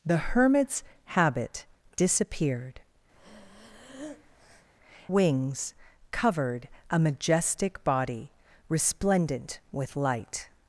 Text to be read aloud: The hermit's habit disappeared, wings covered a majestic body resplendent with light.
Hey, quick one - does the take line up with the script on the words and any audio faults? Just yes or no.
no